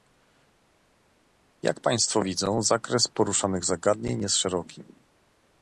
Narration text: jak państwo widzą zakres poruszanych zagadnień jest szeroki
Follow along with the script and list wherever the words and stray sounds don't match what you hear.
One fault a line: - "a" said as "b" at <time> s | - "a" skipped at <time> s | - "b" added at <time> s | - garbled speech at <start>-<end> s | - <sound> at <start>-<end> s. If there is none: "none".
none